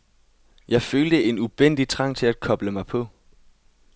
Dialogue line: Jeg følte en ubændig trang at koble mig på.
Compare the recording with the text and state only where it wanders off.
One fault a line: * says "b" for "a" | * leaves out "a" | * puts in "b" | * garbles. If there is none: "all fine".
* puts in "til"